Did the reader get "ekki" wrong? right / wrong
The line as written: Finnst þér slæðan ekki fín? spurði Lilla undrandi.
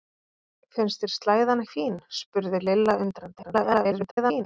wrong